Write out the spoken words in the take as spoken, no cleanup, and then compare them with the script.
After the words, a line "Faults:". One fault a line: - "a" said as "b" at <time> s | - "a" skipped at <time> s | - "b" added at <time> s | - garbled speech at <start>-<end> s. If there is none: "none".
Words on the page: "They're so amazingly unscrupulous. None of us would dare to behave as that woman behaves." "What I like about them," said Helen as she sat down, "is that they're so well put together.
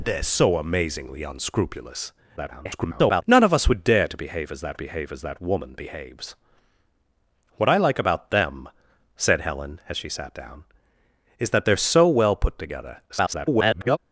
"They're so amazingly unscrupulous. [garbled] None of us would dare to behave as that behave as that woman behaves." "What I like about them," said Helen as she sat down, "is that they're so well put together. [garbled]
Faults:
- garbled speech at 2.4-3.2 s
- "behave as that" added at 4.8 s
- garbled speech at 13.1-14.0 s